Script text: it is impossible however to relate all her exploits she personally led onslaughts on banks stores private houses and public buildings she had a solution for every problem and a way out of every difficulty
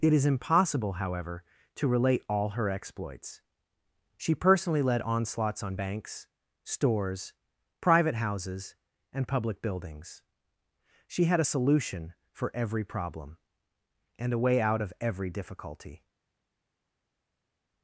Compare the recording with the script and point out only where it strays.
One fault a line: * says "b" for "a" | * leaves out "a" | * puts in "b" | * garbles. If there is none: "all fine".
all fine